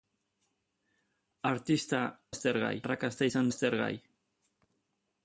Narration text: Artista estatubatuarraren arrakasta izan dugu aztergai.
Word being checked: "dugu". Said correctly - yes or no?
no